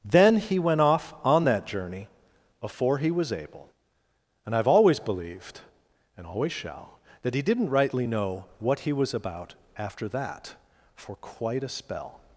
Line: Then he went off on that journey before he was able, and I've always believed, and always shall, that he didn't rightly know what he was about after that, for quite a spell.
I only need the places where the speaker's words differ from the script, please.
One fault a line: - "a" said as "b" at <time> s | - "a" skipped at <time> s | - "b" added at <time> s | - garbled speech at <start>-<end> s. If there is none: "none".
none